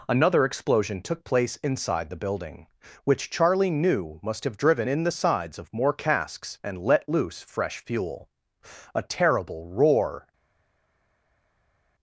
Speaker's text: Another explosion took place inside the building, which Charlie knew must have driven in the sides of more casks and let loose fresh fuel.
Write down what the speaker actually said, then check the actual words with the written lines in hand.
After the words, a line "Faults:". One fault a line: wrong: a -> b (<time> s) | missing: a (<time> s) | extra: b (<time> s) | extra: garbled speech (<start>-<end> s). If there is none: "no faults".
Another explosion took place inside the building, which Charlie knew must have driven in the sides of more casks and let loose fresh fuel. A terrible roar
Faults:
extra: A terrible roar (8.9 s)